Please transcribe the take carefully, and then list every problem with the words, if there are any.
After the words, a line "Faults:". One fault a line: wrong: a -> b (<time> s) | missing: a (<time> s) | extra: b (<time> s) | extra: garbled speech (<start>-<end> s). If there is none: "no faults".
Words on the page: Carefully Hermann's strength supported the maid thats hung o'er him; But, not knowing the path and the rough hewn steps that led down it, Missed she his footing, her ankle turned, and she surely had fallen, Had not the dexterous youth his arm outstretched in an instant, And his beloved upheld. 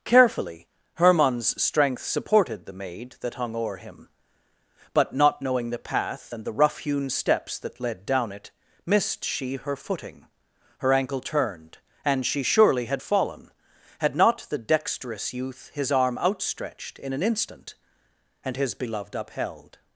Carefully Hermann's strength supported the maid that hung o'er him; But, not knowing the path and the rough hewn steps that led down it, Missed she her footing, her ankle turned, and she surely had fallen, Had not the dexterous youth his arm outstretched in an instant, And his beloved upheld.
Faults:
wrong: thats -> that (3.2 s)
wrong: his -> her (9.6 s)